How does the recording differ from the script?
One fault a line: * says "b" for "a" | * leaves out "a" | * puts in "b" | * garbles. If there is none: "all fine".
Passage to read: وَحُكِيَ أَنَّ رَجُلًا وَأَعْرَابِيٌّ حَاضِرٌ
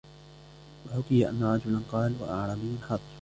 * puts in "قَالَ"